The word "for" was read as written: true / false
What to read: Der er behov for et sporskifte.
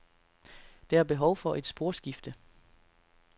true